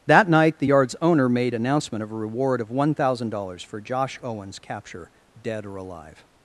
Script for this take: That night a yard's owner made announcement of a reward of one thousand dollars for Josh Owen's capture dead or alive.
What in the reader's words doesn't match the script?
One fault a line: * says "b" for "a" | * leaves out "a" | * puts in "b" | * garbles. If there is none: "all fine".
* says "the" for "a"